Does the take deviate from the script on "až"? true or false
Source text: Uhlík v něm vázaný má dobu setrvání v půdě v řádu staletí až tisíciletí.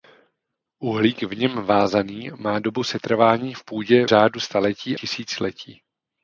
true